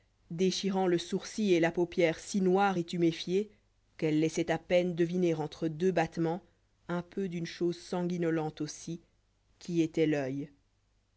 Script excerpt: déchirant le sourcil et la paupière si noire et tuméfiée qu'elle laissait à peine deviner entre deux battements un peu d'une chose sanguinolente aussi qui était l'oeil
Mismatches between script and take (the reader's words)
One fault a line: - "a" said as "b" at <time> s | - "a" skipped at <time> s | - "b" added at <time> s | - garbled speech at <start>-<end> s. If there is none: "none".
none